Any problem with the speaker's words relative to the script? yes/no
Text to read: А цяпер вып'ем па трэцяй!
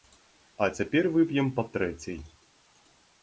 no